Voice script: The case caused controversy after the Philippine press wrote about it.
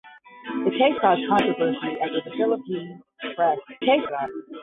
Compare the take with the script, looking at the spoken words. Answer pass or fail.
fail